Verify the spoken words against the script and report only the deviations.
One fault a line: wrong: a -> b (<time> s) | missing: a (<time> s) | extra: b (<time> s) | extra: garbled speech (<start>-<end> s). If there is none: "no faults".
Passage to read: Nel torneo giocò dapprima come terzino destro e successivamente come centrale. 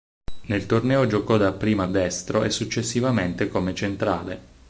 missing: come terzino (1.9 s)